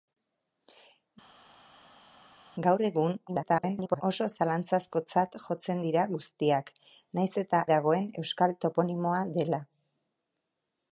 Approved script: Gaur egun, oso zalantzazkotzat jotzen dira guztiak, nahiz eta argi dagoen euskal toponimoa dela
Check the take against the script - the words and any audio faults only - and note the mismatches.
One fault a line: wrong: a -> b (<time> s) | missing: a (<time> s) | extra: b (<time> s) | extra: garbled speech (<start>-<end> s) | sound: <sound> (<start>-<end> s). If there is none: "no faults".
extra: garbled speech (3.3-4.0 s)
missing: argi (7.6 s)